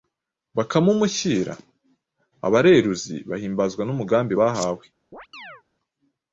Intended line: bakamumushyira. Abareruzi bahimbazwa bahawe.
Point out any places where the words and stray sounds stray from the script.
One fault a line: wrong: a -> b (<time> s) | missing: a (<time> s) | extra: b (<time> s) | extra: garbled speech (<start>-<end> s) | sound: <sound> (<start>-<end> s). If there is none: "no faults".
extra: n'umugambi (3.9 s)
sound: chirp (5.1-5.6 s)